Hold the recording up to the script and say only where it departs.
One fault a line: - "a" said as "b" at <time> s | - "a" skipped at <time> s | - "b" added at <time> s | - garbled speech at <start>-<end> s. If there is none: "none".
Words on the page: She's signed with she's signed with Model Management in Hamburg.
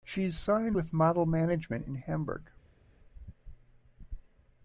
- "she's signed with" skipped at 0.9 s